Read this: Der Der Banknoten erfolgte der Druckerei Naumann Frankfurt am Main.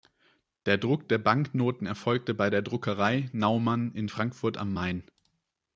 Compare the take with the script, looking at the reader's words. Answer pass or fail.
fail